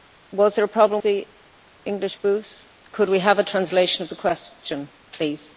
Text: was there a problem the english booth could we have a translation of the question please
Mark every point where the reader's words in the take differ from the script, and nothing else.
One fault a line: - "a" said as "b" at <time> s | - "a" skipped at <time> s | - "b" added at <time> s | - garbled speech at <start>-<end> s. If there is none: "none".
none